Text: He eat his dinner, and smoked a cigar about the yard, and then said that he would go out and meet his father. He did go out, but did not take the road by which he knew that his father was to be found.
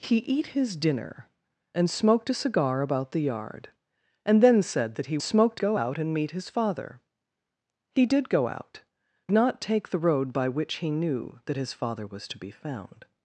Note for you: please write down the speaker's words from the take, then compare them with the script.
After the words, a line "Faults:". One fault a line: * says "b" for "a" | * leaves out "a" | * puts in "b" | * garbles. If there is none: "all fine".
He eat his dinner, and smoked a cigar about the yard, and then said that he smoked go out and meet his father. He did go out, not take the road by which he knew that his father was to be found.
Faults:
* says "smoked" for "would"
* leaves out "but did"